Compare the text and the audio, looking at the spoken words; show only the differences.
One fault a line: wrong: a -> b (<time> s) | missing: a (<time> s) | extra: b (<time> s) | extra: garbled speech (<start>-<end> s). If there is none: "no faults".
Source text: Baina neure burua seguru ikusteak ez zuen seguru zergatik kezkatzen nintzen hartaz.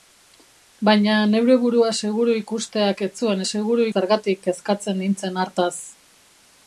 no faults